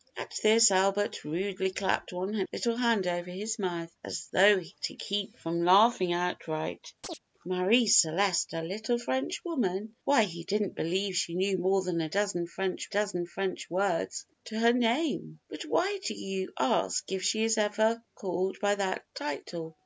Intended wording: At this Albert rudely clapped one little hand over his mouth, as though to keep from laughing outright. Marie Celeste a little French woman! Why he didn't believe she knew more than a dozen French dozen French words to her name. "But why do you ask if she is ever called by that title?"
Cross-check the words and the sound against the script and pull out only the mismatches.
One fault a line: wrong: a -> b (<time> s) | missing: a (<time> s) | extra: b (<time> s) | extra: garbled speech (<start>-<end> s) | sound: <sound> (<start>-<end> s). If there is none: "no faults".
sound: chirp (7.0-7.2 s)